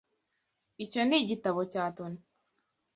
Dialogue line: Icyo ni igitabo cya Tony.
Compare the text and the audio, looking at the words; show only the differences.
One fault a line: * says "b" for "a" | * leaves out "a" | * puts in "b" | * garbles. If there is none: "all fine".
all fine